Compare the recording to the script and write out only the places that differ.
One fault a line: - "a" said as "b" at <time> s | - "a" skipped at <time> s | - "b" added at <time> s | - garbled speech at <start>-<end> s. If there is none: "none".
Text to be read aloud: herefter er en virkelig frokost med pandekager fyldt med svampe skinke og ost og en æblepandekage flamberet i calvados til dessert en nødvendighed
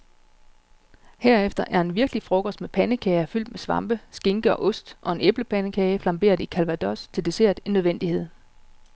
none